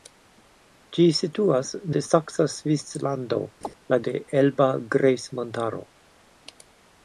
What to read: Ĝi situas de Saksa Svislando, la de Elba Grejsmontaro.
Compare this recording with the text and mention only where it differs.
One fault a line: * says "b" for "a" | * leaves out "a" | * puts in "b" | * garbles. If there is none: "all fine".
all fine